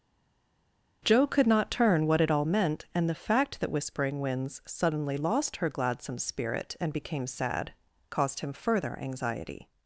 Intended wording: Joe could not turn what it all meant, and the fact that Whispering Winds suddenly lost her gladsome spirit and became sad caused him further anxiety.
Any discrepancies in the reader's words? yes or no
no